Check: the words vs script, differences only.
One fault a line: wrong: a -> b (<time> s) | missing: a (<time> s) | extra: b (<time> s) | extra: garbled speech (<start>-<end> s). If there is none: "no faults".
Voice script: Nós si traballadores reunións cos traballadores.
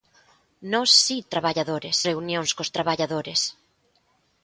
no faults